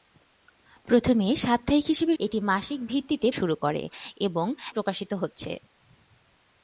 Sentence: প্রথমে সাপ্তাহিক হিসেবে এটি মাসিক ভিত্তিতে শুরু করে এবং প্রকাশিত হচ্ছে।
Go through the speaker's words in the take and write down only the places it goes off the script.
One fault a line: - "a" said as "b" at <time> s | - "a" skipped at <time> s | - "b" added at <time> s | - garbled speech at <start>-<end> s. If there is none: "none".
none